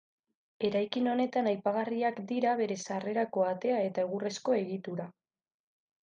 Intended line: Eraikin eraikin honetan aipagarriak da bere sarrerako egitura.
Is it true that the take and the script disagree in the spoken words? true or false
true